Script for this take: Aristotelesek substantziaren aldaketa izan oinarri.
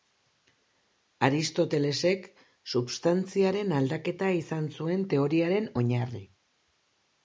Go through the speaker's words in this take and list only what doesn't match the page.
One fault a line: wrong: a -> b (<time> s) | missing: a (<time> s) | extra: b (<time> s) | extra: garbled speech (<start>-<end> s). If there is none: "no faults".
extra: zuen teoriaren (4.8 s)